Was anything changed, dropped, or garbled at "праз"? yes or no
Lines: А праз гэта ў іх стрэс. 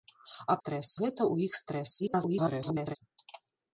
yes